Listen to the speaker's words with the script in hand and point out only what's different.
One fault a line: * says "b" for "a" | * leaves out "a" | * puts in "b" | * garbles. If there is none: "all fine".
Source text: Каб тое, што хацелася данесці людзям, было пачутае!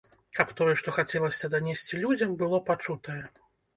all fine